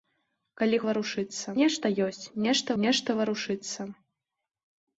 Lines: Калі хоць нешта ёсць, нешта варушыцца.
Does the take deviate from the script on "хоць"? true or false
true